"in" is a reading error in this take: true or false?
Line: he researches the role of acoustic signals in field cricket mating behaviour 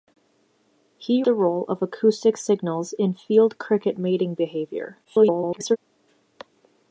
false